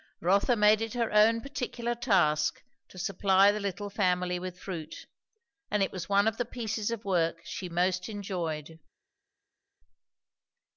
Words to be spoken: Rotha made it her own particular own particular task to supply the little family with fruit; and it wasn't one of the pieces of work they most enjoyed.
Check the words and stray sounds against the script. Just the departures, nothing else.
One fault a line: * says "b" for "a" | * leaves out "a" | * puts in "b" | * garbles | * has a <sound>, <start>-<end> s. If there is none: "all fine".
* leaves out "own particular"
* says "was" for "wasn't"
* says "she" for "they"